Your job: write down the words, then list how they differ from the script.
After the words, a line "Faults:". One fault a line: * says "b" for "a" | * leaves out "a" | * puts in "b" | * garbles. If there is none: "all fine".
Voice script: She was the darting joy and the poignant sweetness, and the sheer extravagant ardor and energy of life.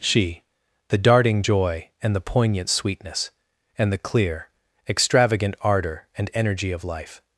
She the darting joy and the poignant sweetness, and the clear extravagant ardor and energy of life.
Faults:
* leaves out "was"
* says "clear" for "sheer"